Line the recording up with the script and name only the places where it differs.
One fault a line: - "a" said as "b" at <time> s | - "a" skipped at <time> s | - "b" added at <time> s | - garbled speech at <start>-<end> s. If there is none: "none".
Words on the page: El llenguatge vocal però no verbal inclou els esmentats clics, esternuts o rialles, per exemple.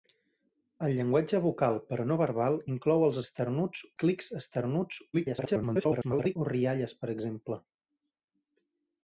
- "esmentats" said as "esternuts" at 3.3 s
- garbled speech at 5.1-6.4 s